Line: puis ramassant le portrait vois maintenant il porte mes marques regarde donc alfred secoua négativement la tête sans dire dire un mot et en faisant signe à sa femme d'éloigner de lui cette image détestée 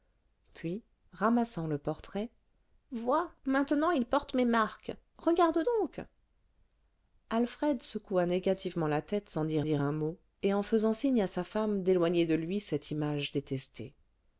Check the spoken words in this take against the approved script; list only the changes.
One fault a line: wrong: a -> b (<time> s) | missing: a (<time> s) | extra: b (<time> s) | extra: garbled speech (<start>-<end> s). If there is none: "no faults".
no faults